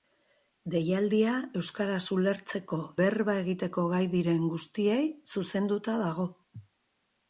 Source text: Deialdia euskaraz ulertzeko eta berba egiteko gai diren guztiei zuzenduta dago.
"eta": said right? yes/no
no